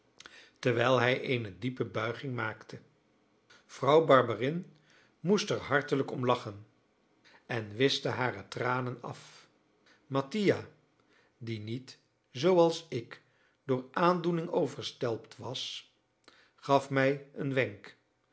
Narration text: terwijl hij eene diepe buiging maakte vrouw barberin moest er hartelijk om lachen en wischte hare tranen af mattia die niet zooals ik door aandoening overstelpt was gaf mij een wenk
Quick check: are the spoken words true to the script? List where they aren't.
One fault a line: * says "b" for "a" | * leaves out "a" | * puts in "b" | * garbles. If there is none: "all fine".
all fine